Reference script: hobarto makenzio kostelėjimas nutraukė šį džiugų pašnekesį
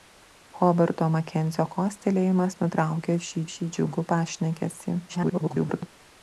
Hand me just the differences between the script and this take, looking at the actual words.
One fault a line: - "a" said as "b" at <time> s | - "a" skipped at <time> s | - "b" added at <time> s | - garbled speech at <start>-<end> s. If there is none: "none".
- "šį" added at 3.5 s
- garbled speech at 5.1-5.9 s